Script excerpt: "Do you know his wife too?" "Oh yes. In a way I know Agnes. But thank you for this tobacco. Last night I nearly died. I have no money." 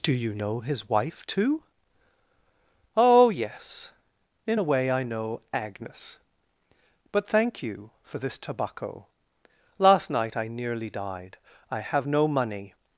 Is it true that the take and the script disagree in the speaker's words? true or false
false